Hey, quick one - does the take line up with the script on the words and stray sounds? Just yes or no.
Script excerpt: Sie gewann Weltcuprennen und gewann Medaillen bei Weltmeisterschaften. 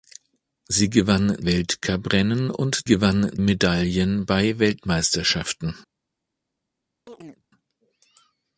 no